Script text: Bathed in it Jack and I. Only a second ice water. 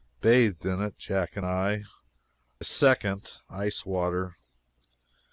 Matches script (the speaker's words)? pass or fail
fail